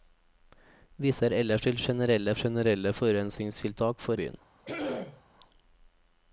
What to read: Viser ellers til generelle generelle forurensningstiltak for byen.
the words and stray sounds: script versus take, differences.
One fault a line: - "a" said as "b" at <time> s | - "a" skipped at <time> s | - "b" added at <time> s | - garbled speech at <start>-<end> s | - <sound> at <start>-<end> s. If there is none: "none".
- throat clearing at 4.6-5.2 s